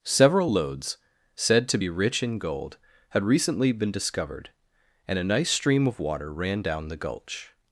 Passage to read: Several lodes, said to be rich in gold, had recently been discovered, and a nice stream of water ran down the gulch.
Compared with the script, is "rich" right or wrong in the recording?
right